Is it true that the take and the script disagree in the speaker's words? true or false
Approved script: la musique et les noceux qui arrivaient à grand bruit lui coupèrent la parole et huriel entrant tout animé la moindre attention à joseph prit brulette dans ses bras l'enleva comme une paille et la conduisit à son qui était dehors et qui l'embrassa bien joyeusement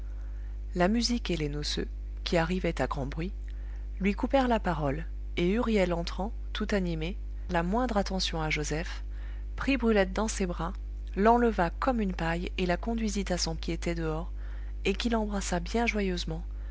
false